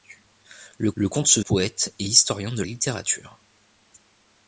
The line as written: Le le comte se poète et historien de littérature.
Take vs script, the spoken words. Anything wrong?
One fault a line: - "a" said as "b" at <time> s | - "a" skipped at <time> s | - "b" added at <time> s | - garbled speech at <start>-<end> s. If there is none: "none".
none